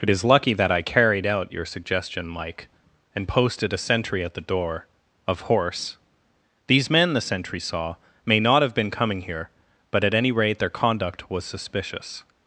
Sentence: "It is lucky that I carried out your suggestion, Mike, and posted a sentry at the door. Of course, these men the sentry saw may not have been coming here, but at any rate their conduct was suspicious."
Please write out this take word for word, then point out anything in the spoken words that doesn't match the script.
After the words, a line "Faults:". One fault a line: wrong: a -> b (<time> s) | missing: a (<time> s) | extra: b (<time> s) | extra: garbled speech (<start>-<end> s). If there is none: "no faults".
"It is lucky that I carried out your suggestion, Mike, and posted a sentry at the door. Of horse, these men the sentry saw may not have been coming here, but at any rate their conduct was suspicious."
Faults:
wrong: course -> horse (5.4 s)